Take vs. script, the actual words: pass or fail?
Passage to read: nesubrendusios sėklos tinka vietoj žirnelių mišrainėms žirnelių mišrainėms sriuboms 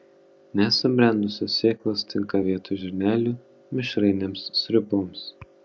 fail